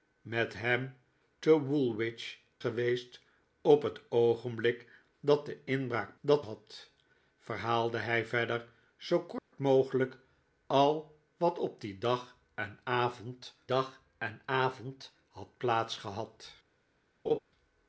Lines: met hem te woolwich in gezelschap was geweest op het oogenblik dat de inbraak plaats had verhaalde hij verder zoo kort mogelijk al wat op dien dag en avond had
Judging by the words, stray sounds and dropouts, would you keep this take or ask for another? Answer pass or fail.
fail